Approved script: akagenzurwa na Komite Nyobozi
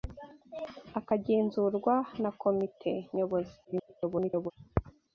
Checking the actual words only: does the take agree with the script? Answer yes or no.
no